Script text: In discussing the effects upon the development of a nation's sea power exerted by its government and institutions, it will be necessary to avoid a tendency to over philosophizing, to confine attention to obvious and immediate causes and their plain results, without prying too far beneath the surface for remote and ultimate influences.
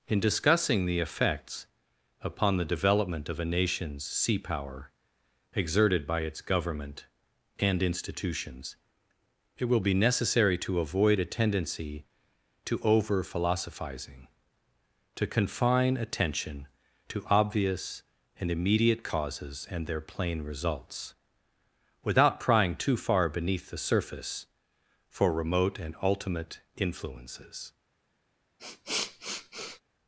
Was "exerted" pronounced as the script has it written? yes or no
yes